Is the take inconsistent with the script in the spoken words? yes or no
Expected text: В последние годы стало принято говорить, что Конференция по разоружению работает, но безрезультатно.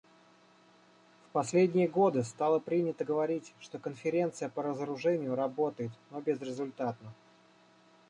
no